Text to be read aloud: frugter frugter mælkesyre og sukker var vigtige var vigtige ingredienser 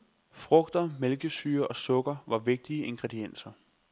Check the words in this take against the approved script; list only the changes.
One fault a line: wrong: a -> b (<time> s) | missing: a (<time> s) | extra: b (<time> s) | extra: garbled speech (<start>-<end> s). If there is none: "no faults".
missing: frugter (0.9 s)
missing: var vigtige (2.8 s)